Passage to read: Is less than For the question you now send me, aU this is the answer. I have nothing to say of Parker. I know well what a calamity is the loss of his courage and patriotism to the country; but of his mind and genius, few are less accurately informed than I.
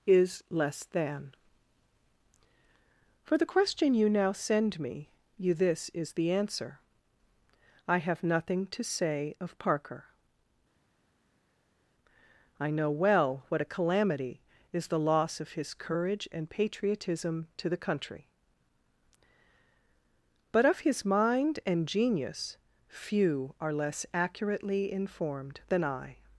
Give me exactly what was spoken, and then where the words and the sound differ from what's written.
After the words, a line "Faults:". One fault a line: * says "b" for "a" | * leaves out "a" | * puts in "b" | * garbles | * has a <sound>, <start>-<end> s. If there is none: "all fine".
Is less than For the question you now send me, you this is the answer. I have nothing to say of Parker. I know well what a calamity is the loss of his courage and patriotism to the country; but of his mind and genius, few are less accurately informed than I.
Faults:
* says "you" for "aU"